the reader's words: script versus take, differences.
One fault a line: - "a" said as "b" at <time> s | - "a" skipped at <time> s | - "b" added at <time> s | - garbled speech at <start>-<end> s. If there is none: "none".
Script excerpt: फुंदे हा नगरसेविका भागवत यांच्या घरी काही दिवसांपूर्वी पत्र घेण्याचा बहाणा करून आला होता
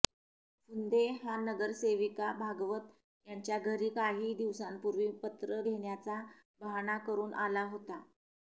none